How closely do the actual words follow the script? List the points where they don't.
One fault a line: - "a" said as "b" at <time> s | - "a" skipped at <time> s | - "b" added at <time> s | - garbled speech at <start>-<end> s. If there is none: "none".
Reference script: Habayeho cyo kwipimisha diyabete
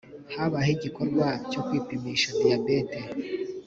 - "igikorwa" added at 0.8 s